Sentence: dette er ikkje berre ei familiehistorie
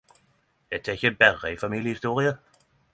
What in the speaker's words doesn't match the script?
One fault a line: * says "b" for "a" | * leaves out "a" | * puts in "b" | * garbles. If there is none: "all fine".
all fine